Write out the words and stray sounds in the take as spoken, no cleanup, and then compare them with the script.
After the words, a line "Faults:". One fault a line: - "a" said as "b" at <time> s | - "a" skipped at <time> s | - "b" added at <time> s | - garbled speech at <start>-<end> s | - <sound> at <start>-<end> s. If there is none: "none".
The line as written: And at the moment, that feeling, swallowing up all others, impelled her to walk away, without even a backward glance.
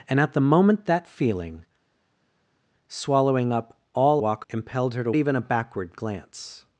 And at the moment, that feeling, swallowing up all walk, impelled her to even a backward glance.
Faults:
- "others" said as "walk" at 4.2 s
- "walk away without" skipped at 5.1 s